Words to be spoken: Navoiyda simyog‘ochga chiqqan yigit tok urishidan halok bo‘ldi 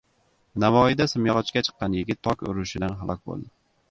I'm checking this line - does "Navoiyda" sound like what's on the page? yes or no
yes